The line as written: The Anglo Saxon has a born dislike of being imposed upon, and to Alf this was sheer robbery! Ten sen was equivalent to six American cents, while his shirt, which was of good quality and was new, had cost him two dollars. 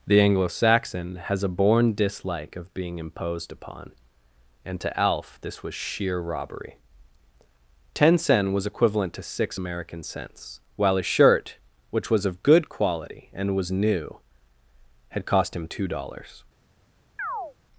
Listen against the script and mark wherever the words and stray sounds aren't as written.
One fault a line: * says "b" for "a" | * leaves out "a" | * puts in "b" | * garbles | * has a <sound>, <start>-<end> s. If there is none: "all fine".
* says "a" for "his"
* has a chirp, 17.2-17.5 s